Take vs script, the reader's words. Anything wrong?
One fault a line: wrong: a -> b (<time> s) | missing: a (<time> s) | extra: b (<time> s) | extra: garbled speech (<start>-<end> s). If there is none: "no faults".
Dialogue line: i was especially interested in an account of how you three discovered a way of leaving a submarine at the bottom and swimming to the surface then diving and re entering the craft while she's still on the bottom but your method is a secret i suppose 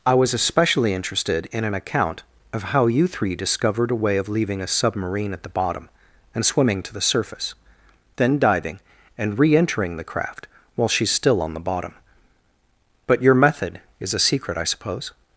no faults